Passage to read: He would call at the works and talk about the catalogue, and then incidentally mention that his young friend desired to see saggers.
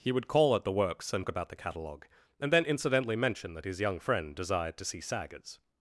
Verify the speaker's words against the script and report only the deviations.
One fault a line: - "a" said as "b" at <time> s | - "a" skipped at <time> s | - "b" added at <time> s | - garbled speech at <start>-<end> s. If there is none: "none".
- "talk" skipped at 1.3 s